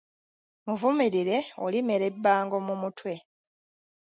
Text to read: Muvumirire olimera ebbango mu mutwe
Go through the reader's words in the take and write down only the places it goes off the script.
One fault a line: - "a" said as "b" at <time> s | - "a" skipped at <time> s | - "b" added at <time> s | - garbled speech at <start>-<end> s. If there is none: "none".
none